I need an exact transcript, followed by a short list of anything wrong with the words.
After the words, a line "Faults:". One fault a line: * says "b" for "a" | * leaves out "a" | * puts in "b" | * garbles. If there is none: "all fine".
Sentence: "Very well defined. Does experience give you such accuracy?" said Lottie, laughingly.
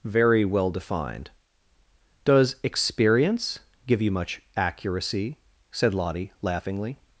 "Very well defined. Does experience give you much accuracy?" said Lottie, laughingly.
Faults:
* says "much" for "such"